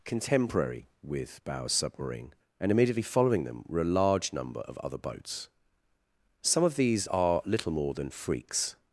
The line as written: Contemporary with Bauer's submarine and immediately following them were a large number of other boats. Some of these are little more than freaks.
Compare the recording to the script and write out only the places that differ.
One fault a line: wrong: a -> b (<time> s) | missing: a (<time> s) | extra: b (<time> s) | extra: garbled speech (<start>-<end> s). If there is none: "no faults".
no faults